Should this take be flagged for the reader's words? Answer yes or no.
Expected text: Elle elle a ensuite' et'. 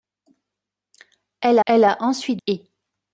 no